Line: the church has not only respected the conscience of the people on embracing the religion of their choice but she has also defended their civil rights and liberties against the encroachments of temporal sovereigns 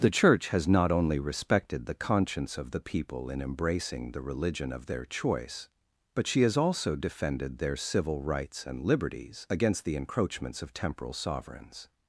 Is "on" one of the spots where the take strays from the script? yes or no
yes